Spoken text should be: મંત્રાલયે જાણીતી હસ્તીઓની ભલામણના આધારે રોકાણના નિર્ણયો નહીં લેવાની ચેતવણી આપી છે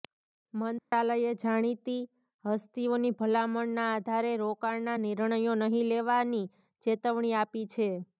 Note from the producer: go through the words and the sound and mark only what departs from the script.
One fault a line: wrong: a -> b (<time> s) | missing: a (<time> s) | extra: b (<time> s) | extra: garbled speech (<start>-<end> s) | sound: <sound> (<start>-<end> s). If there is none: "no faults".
sound: dropout (0.8-0.9 s)